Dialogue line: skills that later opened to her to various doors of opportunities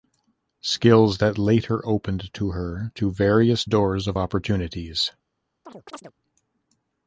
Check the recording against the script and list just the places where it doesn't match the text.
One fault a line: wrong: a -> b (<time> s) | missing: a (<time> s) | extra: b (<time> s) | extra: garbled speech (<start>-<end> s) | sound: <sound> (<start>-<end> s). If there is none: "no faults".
sound: chirp (5.7-6.1 s)